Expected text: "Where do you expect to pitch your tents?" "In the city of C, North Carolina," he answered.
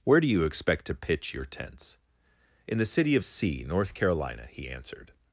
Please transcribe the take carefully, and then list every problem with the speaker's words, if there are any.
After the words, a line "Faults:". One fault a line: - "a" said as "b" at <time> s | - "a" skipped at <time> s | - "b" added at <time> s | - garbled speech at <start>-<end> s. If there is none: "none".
"Where do you expect to pitch your tents?" "In the city of C, North Carolina," he answered.
Faults:
none